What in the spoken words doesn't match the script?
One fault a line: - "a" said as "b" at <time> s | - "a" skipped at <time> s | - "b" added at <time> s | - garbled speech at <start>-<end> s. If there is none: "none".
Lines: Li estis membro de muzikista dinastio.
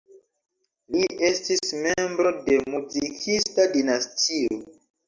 none